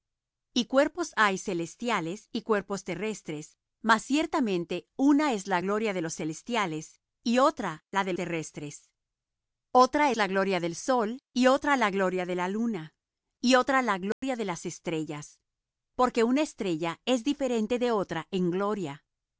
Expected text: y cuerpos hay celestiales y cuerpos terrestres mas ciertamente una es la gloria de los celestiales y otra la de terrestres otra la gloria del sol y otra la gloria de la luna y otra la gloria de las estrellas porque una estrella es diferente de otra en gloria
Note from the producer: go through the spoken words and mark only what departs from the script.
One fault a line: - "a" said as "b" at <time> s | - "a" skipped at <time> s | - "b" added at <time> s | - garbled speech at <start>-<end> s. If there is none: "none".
none